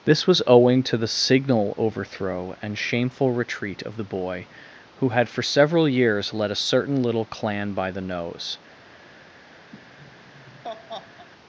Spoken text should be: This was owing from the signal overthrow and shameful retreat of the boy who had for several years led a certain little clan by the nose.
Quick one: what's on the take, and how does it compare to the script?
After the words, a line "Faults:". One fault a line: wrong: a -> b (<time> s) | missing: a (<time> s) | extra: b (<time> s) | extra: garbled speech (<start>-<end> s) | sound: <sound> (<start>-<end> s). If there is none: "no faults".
This was owing to the signal overthrow and shameful retreat of the boy who had for several years led a certain little clan by the nose.
Faults:
wrong: from -> to (0.8 s)
sound: laugh (9.7-11.3 s)